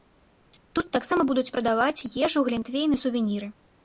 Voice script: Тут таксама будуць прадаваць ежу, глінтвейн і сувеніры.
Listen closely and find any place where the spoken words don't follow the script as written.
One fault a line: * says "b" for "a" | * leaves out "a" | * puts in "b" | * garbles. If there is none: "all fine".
all fine